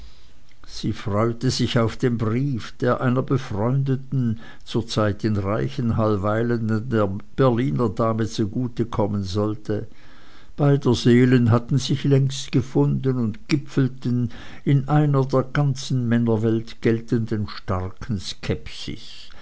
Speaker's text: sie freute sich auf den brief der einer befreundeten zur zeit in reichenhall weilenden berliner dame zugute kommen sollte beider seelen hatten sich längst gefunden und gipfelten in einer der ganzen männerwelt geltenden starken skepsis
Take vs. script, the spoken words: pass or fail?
pass